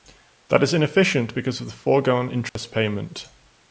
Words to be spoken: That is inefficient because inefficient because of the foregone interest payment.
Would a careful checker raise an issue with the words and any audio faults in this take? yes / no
yes